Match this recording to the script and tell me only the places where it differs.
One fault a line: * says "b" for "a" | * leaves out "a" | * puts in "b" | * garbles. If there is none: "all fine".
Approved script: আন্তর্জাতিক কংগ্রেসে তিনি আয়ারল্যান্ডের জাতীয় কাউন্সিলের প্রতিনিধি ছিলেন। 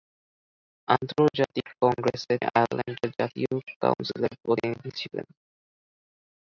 * leaves out "তিনি"